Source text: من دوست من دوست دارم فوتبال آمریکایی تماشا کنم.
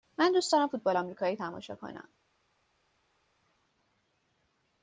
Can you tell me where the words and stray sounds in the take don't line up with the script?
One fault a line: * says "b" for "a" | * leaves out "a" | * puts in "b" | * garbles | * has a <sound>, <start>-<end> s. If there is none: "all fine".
* leaves out "من دوست"